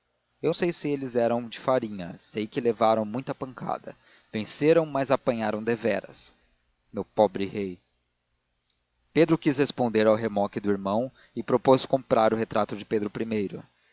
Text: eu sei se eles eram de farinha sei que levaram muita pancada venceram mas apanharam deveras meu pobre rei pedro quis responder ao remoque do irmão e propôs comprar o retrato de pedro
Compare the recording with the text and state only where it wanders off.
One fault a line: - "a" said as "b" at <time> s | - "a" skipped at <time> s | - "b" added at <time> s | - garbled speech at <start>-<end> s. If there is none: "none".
none